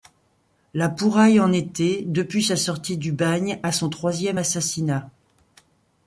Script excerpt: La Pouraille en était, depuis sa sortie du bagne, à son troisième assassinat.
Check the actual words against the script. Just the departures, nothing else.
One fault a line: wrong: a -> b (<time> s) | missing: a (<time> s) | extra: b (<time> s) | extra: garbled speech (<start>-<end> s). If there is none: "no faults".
no faults